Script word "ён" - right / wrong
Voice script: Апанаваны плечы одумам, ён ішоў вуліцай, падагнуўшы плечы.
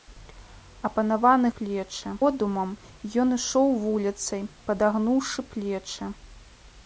right